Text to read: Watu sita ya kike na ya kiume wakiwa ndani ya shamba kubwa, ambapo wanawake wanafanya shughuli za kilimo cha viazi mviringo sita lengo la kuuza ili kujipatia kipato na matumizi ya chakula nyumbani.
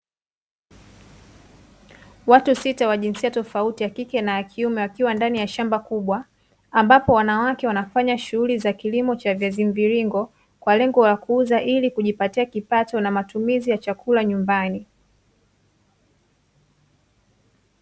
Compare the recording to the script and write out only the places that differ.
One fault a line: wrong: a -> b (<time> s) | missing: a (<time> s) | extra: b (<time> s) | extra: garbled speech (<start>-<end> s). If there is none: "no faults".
extra: wa jinsia tofauti (2.9 s)
wrong: sita -> kwa (10.6 s)